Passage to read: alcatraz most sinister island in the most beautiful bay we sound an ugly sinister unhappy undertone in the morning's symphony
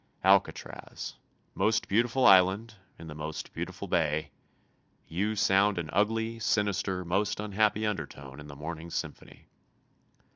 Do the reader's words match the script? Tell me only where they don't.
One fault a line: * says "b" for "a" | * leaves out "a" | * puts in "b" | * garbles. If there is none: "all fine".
* says "beautiful" for "sinister"
* says "you" for "we"
* puts in "most"